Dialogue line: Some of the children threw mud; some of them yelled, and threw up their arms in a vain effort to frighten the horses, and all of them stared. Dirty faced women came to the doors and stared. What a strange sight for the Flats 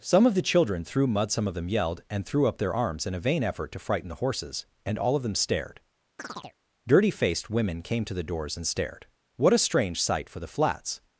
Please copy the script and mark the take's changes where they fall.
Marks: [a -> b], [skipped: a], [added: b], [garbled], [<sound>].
Some of the children threw mud; some of them yelled, and threw up their arms in a vain effort to frighten the horses, and all of them stared. [chirp] Dirty faced women came to the doors and stared. What a strange sight for the Flats